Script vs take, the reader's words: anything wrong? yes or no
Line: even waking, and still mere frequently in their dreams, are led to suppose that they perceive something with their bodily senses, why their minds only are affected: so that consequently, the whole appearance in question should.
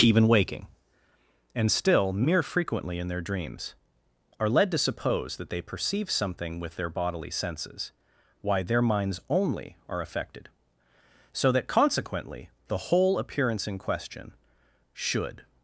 no